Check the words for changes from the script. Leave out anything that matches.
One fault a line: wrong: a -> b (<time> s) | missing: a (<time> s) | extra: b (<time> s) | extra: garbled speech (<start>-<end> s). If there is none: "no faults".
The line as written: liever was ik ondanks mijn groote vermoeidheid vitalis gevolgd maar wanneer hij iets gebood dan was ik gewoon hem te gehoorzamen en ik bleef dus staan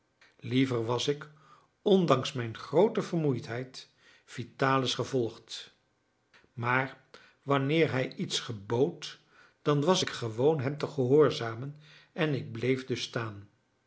no faults